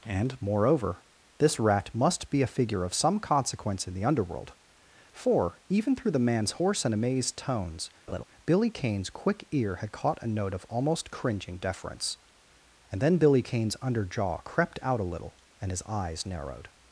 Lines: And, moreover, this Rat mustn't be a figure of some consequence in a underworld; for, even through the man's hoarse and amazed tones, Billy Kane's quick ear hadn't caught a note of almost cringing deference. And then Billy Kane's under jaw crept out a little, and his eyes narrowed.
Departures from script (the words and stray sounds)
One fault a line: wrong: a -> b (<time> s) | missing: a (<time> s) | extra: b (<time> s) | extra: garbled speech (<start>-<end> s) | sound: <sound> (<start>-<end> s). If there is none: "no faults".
wrong: mustn't -> must (1.9 s)
wrong: a -> the (3.9 s)
sound: laugh (8.1-8.2 s)
wrong: hadn't -> had (9.8 s)